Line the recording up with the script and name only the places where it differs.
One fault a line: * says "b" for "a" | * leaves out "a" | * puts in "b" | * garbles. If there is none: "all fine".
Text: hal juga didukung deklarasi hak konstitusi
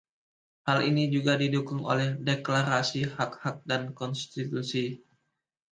* puts in "ini"
* puts in "oleh"
* puts in "hak dan"